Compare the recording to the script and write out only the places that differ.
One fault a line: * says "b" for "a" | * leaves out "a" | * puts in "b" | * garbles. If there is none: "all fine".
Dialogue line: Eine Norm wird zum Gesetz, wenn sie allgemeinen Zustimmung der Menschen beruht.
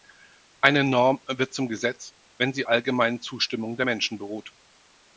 all fine